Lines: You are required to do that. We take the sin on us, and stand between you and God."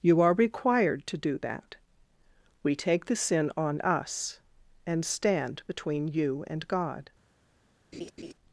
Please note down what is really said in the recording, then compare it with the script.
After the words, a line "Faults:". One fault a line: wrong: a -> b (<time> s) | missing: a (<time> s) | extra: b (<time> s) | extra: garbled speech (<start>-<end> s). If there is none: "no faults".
You are required to do that. We take the sin on us, and stand between you and God."
Faults:
no faults